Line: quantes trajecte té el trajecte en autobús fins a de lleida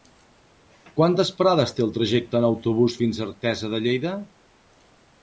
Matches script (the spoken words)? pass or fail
fail